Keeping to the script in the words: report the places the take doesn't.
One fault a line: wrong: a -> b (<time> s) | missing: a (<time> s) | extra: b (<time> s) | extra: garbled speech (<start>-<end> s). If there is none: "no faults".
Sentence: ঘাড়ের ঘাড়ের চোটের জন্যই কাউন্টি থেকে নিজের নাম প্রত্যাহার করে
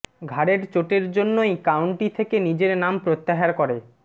missing: ঘাড়ের (0.6 s)